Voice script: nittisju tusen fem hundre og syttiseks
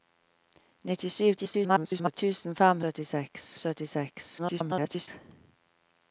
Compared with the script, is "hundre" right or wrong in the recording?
wrong